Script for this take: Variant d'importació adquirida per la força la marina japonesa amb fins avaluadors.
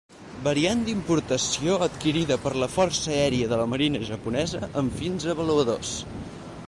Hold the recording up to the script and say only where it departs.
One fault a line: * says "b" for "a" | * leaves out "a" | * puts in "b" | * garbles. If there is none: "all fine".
* puts in "aèria de"